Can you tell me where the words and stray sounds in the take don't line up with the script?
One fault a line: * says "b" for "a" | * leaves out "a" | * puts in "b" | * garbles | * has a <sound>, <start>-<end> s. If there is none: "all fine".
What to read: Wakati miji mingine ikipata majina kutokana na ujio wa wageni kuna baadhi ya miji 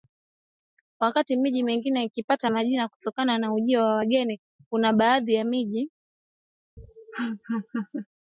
* has a laugh, 6.8-8.1 s